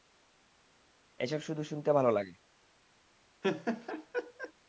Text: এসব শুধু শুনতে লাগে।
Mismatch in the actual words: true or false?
true